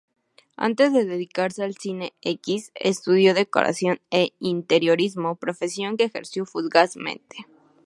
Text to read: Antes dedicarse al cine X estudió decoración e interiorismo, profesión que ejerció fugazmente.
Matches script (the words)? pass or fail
fail